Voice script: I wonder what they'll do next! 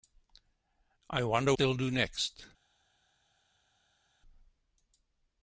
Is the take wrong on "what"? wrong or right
wrong